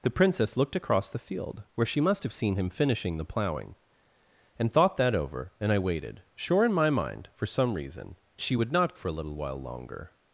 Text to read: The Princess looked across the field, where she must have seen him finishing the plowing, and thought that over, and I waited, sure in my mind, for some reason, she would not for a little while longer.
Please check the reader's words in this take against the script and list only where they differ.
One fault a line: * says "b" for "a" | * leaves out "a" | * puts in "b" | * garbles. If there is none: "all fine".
all fine